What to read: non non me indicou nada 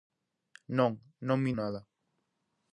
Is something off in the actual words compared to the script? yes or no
yes